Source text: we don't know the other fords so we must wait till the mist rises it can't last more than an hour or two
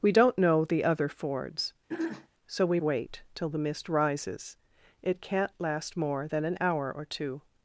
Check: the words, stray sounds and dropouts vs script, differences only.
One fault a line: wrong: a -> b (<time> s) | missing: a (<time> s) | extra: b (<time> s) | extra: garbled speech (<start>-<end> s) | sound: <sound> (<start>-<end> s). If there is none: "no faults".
sound: throat clearing (1.9-2.3 s)
missing: must (2.8 s)